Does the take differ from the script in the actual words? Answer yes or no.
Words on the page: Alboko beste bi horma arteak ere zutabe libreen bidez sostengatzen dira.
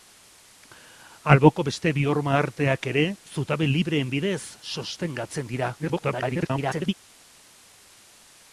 yes